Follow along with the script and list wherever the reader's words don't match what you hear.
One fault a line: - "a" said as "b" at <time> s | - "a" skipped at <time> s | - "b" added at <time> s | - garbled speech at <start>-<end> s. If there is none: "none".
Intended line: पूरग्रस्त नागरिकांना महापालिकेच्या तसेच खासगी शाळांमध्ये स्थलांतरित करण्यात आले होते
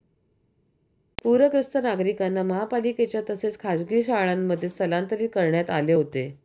none